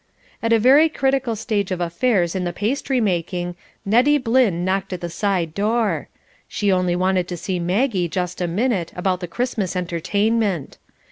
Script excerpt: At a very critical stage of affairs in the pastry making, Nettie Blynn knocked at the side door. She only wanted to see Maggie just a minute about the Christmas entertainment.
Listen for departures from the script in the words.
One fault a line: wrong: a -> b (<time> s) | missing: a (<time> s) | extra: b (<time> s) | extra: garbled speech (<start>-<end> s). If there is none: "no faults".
no faults